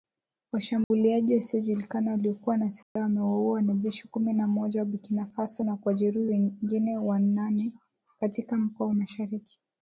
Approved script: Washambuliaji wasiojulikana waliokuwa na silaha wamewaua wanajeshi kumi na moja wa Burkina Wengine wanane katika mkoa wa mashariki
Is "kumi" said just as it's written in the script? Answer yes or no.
yes